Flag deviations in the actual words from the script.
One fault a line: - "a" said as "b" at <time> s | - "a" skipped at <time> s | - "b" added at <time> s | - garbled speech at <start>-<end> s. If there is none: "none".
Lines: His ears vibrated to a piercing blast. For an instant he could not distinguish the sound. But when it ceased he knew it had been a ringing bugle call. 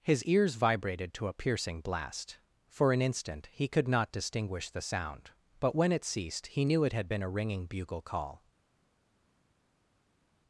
none